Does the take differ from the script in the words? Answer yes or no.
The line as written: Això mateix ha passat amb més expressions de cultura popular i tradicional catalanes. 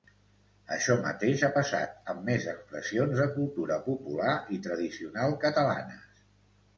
no